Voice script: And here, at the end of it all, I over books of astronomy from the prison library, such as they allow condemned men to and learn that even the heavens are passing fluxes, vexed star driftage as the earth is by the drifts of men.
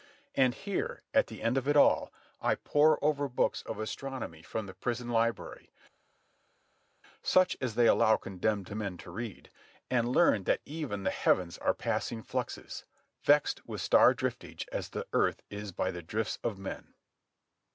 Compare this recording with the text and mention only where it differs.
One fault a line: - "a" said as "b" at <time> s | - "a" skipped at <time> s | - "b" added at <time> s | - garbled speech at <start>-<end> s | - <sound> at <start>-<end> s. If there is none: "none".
- "pore" added at 2.5 s
- "read" added at 9.1 s
- "with" added at 13.6 s